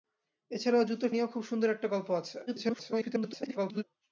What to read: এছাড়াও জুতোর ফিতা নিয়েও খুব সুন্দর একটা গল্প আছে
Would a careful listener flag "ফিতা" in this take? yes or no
yes